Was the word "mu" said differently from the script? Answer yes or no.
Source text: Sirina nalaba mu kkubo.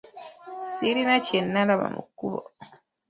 no